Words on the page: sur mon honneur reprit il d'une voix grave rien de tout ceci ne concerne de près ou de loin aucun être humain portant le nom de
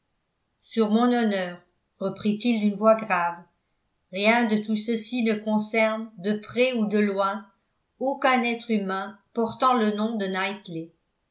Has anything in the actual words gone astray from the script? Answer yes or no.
no